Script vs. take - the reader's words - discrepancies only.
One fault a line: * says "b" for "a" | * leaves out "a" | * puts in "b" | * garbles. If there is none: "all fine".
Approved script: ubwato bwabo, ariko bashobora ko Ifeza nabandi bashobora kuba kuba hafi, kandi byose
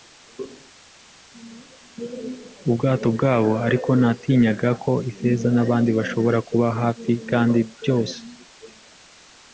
* says "natinyaga" for "bashobora"
* leaves out "kuba"